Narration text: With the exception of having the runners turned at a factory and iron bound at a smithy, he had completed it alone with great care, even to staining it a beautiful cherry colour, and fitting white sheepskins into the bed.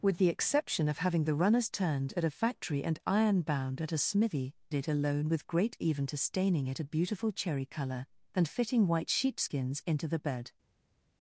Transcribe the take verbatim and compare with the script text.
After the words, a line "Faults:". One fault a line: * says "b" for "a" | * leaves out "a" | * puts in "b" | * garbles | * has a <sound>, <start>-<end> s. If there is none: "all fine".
With the exception of having the runners turned at a factory and iron bound at a smithy, it alone with great even to staining it a beautiful cherry colour, and fitting white sheepskins into the bed.
Faults:
* leaves out "he had completed"
* leaves out "care"